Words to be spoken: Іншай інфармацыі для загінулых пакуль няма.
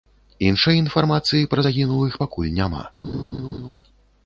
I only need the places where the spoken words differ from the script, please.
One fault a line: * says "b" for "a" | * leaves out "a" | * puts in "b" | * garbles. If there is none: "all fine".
* says "пра" for "для"